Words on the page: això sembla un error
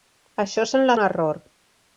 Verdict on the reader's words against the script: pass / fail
pass